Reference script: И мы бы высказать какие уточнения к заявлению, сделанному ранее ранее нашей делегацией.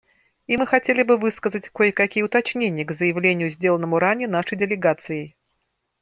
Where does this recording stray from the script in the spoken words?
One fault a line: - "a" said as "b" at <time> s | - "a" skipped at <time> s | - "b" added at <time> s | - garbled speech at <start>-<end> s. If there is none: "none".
- "хотели" added at 0.7 s
- "кое" added at 1.7 s
- "ранее" skipped at 4.3 s